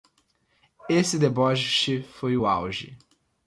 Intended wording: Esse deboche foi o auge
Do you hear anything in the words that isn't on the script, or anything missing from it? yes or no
no